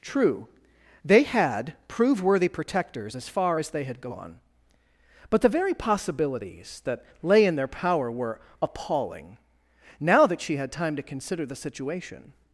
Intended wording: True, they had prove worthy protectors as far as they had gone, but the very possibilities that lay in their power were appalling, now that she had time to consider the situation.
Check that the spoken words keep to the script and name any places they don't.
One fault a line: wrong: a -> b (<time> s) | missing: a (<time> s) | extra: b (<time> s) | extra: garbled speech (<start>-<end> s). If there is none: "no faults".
no faults